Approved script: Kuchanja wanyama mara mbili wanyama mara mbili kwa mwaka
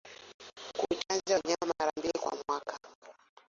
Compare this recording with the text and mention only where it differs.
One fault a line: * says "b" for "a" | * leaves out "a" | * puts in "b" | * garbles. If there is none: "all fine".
* leaves out "wanyama mara mbili"